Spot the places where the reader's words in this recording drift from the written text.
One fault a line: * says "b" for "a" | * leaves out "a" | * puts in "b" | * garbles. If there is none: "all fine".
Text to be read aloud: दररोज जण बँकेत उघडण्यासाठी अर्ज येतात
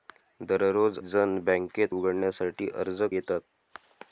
all fine